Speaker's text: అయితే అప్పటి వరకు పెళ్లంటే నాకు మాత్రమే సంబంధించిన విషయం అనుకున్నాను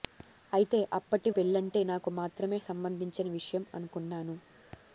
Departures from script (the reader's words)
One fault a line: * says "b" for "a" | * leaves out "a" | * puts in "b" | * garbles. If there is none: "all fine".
* leaves out "వరకు"